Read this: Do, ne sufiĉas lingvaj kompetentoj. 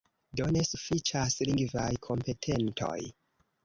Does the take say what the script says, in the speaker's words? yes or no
yes